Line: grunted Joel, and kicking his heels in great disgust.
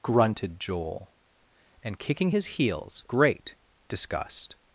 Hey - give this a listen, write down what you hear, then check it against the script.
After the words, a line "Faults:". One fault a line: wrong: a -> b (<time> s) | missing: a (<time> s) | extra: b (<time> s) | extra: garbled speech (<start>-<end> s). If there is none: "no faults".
grunted Joel, and kicking his heels great disgust.
Faults:
missing: in (3.0 s)